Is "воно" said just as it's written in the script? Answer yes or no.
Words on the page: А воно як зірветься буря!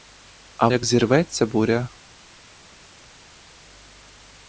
no